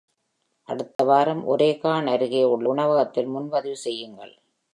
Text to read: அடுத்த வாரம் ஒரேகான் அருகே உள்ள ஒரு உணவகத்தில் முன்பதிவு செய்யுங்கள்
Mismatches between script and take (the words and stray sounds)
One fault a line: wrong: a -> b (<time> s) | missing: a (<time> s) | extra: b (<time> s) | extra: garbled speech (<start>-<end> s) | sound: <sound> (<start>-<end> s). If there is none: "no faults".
sound: dropout (0.9-1.0 s)
missing: ஒரு (2.7 s)